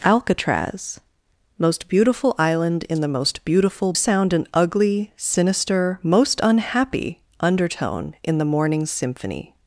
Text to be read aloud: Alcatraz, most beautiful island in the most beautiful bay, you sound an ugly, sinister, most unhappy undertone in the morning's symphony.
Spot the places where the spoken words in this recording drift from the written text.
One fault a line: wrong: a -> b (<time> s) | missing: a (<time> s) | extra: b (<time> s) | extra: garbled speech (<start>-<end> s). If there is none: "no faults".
missing: bay you (3.9 s)